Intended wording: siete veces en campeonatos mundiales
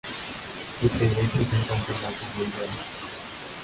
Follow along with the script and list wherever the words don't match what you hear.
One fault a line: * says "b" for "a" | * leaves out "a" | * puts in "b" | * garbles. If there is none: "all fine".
all fine